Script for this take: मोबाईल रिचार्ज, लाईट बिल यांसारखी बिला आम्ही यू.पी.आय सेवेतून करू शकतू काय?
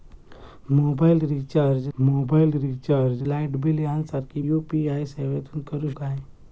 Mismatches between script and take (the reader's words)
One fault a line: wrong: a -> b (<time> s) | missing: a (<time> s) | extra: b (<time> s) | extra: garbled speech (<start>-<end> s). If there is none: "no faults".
extra: मोबाईल रिचार्ज (2.0 s)
missing: बिला आम्ही (4.4 s)
missing: शकतू (5.9 s)